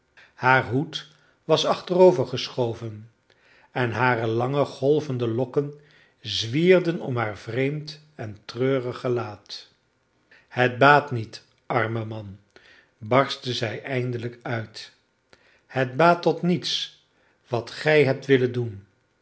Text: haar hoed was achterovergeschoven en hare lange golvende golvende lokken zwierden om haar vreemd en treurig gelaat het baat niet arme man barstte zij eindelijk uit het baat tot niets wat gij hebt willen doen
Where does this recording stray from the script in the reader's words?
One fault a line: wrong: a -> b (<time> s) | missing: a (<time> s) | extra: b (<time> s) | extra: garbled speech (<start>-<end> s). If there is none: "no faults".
missing: golvende (5.3 s)